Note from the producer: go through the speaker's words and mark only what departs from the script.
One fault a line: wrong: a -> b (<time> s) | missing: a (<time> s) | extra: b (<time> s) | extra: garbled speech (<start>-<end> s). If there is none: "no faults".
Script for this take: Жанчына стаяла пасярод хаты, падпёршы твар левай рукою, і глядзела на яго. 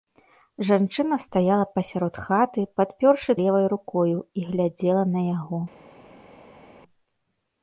missing: твар (3.3 s)